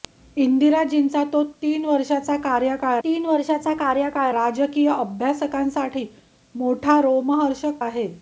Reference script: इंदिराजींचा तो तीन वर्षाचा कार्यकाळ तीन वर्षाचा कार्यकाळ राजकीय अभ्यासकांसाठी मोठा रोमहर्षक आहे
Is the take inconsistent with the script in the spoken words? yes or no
no